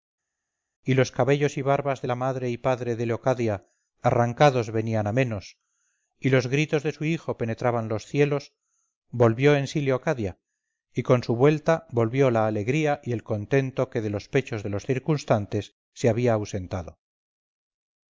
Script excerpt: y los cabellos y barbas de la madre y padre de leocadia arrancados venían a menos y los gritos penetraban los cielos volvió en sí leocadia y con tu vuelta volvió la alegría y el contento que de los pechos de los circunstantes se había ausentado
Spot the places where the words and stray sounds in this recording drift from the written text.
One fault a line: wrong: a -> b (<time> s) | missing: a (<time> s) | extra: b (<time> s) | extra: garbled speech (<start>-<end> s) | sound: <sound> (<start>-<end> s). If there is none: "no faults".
extra: de su hijo (6.8 s)
wrong: tu -> su (11.2 s)